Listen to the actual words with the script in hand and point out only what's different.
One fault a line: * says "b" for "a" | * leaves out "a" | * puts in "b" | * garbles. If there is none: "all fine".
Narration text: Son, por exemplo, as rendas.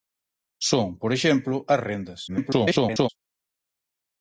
* garbles